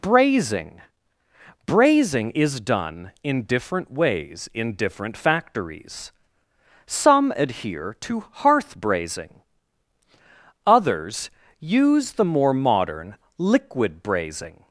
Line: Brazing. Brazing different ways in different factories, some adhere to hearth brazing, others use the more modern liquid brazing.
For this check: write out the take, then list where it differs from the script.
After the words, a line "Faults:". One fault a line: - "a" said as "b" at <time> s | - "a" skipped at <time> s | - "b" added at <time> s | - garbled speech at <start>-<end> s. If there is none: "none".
Brazing. Brazing is done in different ways in different factories, some adhere to hearth brazing, others use the more modern liquid brazing.
Faults:
- "is done in" added at 2.3 s